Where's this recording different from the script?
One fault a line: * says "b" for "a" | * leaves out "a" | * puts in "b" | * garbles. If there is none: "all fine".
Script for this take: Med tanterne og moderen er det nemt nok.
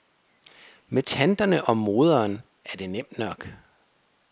all fine